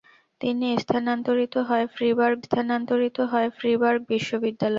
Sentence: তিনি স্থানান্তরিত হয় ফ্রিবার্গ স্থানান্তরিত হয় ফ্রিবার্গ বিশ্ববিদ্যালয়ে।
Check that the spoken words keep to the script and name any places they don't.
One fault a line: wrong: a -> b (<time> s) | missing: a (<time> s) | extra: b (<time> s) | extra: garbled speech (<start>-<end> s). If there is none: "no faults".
no faults